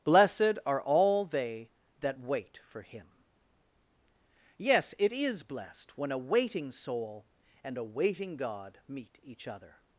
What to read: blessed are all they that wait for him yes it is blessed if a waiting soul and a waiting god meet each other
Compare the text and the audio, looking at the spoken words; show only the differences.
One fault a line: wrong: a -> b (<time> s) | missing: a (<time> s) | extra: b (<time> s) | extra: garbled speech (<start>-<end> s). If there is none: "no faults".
wrong: if -> when (6.0 s)